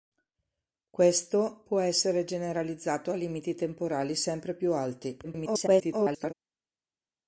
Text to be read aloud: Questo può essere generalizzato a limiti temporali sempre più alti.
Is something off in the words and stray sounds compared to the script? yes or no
yes